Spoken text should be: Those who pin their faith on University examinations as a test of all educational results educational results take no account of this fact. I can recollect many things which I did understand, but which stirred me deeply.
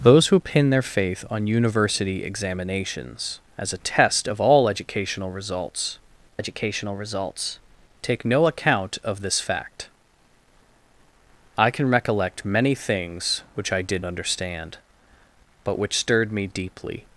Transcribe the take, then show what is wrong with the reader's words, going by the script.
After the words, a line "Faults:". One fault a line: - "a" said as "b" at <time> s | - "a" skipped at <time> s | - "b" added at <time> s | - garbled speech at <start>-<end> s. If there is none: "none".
Those who pin their faith on University examinations as a test of all educational results educational results take no account of this fact. I can recollect many things which I did understand, but which stirred me deeply.
Faults:
none